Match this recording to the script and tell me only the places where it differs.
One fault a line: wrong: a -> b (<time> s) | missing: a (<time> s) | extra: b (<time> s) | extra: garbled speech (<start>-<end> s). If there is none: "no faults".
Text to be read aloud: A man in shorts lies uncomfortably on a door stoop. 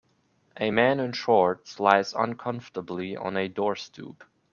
no faults